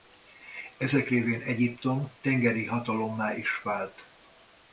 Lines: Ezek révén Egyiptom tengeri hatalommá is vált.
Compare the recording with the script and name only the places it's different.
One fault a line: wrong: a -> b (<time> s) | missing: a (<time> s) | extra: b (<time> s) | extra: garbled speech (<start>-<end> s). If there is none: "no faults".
no faults